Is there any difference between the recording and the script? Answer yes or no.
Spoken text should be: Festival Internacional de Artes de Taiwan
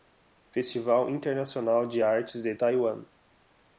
no